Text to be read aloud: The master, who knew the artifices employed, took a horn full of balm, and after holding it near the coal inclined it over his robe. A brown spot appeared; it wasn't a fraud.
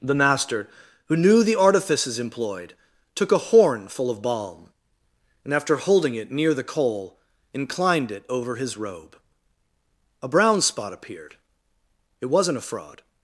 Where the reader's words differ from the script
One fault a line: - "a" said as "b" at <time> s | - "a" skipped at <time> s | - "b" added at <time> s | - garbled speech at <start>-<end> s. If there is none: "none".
none